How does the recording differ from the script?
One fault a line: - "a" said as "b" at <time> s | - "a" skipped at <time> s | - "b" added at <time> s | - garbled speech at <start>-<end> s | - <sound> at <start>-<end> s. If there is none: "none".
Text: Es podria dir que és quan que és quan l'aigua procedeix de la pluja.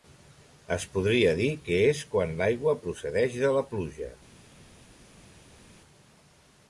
- "que és quan" skipped at 2.4 s